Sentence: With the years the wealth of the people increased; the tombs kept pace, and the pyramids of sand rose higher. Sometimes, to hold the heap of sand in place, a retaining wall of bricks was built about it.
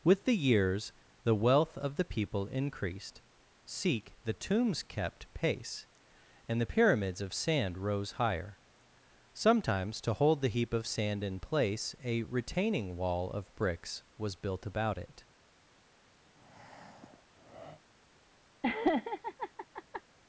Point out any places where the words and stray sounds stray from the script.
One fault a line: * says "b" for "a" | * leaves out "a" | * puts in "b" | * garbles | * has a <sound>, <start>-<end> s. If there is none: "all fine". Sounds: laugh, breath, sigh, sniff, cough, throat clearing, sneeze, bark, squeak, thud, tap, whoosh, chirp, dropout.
* puts in "seek"
* has a breath, 16.3-17.8 s
* has a laugh, 18.6-20.0 s